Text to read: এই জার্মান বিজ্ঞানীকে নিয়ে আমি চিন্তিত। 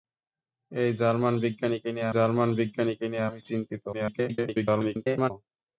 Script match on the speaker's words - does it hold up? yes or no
no